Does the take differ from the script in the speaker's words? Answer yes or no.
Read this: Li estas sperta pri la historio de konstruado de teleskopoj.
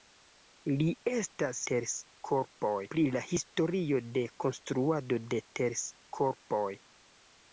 yes